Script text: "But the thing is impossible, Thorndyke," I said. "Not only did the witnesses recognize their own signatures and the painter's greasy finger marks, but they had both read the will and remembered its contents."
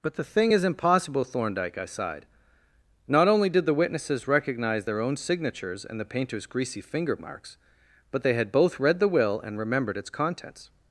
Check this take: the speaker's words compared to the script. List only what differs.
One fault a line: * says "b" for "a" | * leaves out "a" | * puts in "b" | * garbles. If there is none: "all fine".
* says "sighed" for "said"